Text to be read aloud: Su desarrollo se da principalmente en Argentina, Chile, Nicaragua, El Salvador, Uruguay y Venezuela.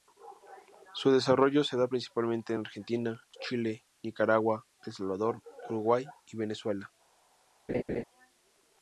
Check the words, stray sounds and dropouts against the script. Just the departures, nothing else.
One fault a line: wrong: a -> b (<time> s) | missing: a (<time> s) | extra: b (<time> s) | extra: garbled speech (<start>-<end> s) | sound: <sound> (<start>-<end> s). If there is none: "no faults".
sound: laugh (7.7-8.0 s)